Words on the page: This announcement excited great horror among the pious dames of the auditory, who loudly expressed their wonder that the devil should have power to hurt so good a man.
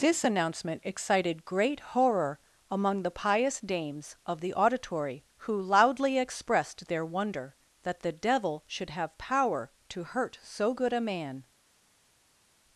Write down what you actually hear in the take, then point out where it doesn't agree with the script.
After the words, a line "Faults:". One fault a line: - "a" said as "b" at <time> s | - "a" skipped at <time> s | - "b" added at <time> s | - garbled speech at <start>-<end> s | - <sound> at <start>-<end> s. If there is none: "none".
This announcement excited great horror among the pious dames of the auditory, who loudly expressed their wonder that the devil should have power to hurt so good a man.
Faults:
none